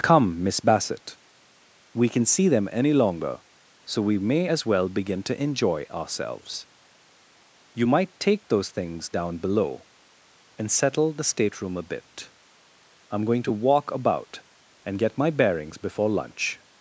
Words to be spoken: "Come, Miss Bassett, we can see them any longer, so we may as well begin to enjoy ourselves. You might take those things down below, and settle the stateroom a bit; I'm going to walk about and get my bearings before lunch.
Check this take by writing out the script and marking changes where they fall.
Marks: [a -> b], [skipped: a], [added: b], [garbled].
"Come, Miss Bassett, we can see them any longer, so we may as well begin to enjoy ourselves. You might take those things down below, and settle the stateroom a bit; I'm going to walk about and get my bearings before lunch.